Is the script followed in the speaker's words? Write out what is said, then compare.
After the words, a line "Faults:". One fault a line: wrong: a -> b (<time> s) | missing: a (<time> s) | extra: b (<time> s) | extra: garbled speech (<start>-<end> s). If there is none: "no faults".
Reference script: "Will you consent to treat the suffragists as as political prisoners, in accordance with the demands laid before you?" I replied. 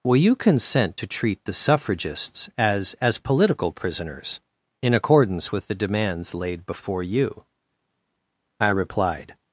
"Will you consent to treat the suffragists as as political prisoners, in accordance with the demands laid before you?" I replied.
Faults:
no faults